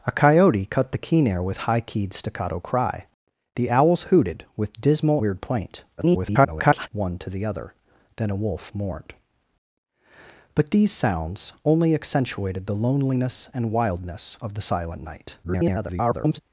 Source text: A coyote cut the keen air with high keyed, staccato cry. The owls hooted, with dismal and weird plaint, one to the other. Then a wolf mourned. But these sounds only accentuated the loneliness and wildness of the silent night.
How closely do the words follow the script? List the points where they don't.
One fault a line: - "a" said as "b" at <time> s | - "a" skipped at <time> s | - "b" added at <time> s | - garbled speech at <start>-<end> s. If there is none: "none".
- "and" skipped at 5.2 s
- garbled speech at 6.0-6.9 s
- garbled speech at 15.4-16.4 s